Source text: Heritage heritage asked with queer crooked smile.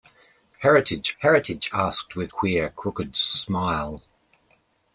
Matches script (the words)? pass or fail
pass